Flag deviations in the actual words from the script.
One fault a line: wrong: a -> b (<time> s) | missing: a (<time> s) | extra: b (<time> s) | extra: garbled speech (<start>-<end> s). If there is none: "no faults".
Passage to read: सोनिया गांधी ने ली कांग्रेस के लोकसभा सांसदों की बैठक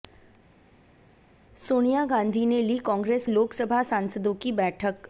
missing: के (3.3 s)